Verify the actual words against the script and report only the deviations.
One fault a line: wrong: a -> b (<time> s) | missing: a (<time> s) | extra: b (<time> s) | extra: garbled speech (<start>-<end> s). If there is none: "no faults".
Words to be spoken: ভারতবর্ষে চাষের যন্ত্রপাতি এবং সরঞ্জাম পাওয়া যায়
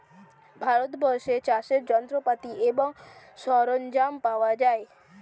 no faults